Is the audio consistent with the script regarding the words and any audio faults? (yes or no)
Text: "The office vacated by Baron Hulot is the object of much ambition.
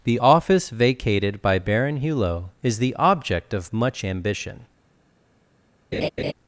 no